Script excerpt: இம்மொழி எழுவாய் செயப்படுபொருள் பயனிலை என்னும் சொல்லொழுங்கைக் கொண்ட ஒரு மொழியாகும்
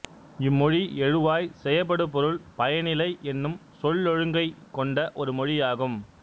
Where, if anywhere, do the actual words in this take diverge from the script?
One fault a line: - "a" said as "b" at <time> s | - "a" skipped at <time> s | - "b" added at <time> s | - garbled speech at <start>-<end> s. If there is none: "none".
none